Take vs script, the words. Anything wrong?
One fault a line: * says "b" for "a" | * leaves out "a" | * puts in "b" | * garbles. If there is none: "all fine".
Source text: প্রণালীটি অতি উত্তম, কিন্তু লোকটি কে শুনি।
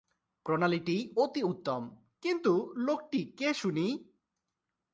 all fine